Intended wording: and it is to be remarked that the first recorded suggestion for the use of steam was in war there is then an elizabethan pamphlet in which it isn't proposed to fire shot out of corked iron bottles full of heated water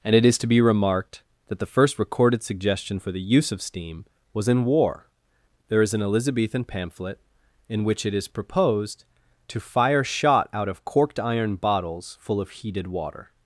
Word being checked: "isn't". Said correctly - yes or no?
no